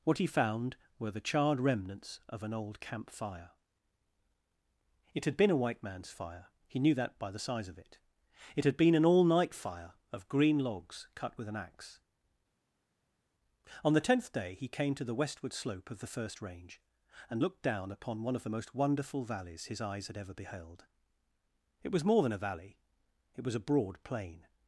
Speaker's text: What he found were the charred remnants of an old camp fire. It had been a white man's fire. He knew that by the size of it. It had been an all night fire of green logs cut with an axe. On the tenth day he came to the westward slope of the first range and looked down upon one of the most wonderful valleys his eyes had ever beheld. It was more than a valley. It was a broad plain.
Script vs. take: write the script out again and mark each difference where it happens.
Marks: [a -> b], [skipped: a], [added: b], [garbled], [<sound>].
What he found were the charred remnants of an old camp fire. It had been a white man's fire. He knew that by the size of it. It had been an all night fire of green logs cut with an axe. On the tenth day he came to the westward slope of the first range and looked down upon one of the most wonderful valleys his eyes had ever beheld. It was more than a valley. It was a broad plain.